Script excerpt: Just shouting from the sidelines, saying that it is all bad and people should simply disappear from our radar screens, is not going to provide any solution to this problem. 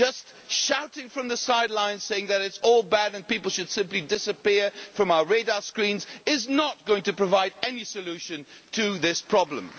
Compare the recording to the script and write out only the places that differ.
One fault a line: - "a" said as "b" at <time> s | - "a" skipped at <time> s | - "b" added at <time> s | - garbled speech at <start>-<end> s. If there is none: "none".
none